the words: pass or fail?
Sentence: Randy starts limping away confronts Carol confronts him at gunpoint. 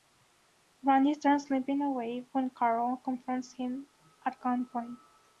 fail